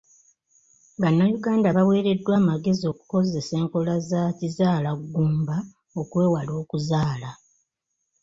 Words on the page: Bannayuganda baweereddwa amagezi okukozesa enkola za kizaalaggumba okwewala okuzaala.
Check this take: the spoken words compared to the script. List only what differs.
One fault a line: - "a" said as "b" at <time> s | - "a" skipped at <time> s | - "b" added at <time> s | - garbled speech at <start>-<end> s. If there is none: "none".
none